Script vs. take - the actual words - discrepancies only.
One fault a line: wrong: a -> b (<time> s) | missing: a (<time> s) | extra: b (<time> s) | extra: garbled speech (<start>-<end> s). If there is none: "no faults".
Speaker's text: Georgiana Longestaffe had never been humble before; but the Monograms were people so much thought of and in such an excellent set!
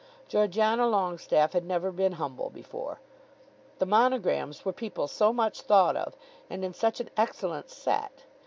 missing: but (3.0 s)